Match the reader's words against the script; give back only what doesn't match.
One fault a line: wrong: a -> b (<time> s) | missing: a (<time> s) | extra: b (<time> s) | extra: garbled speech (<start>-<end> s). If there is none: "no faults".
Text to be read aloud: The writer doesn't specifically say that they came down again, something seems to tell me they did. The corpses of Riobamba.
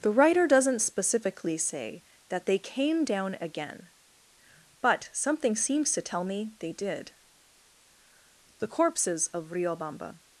extra: but (4.8 s)